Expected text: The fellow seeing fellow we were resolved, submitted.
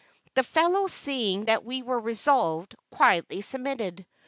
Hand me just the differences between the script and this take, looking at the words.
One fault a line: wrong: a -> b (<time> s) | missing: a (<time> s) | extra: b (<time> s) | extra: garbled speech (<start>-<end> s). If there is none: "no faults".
wrong: fellow -> that (1.4 s)
extra: quietly (2.9 s)